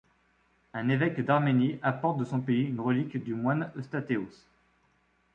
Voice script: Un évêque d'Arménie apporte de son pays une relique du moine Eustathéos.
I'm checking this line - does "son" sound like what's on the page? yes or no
yes